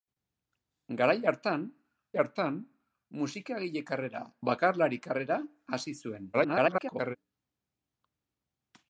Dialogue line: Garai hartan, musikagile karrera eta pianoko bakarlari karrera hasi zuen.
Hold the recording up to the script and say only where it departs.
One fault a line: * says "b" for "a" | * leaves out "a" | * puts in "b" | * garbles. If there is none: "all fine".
* puts in "hartan"
* leaves out "eta pianoko"
* garbles